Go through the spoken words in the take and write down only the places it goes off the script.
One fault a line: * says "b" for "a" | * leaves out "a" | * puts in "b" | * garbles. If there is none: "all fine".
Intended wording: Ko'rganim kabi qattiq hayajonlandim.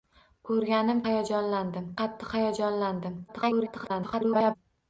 * says "hayajonlandim" for "kabi"
* garbles